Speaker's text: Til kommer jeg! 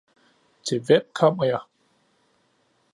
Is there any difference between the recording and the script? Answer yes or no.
yes